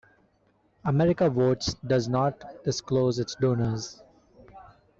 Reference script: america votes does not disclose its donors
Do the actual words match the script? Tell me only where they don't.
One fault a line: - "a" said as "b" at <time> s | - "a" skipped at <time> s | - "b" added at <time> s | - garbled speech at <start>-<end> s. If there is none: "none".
none